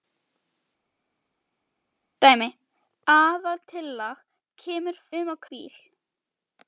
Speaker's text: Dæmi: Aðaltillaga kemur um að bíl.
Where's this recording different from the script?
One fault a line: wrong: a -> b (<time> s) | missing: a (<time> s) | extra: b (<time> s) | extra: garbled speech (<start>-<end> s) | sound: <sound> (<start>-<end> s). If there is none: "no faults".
no faults